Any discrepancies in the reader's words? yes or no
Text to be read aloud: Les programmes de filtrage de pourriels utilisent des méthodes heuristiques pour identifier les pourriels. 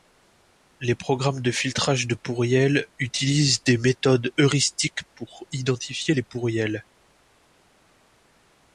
no